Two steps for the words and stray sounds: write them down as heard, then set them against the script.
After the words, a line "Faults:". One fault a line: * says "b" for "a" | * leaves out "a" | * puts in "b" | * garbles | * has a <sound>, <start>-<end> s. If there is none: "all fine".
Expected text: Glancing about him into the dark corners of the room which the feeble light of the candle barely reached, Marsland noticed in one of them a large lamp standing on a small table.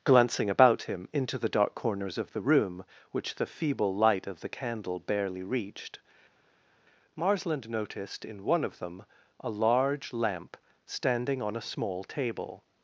Glancing about him into the dark corners of the room which the feeble light of the candle barely reached, Marsland noticed in one of them a large lamp standing on a small table.
Faults:
all fine